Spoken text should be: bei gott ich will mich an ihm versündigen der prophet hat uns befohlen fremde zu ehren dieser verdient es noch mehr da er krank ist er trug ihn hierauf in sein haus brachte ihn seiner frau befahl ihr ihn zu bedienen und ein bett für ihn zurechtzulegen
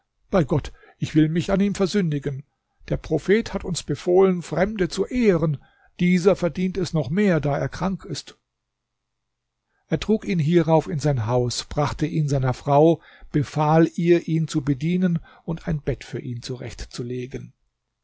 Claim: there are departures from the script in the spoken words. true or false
false